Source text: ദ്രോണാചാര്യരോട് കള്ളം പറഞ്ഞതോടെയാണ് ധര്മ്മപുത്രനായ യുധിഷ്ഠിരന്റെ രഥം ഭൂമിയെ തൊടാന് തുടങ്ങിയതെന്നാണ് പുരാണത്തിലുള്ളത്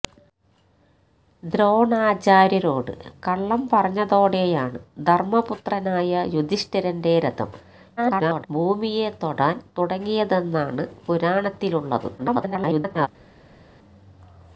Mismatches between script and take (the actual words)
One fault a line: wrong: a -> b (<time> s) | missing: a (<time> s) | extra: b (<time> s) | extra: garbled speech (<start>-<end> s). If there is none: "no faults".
extra: garbled speech (8.0-8.5 s)
extra: garbled speech (12.2-13.1 s)